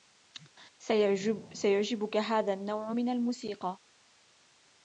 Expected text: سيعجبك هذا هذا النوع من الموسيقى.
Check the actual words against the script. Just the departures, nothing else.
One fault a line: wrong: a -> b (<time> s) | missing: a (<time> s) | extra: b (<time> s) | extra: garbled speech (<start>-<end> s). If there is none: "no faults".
missing: هذا (2.5 s)